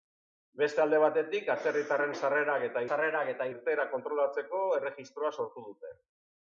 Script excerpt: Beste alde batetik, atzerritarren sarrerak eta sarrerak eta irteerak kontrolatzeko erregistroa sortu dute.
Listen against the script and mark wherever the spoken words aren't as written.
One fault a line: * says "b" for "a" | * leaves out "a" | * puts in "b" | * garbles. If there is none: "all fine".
all fine